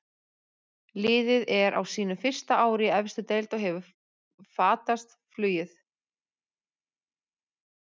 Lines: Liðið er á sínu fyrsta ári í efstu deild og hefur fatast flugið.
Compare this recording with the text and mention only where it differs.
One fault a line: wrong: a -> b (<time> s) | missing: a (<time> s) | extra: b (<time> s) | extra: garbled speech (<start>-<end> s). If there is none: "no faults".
no faults